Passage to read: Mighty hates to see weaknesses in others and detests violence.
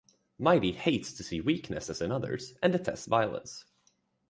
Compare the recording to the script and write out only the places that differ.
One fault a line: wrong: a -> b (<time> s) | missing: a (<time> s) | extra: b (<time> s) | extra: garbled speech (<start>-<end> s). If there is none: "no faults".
no faults